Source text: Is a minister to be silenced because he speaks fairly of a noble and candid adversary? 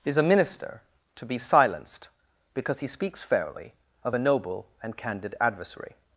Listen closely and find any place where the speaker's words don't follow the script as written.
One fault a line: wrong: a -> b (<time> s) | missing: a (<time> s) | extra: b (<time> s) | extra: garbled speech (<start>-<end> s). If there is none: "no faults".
no faults